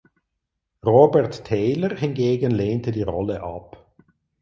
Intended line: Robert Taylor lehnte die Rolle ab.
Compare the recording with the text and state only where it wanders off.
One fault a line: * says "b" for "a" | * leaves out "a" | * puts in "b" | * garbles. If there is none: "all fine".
* puts in "hingegen"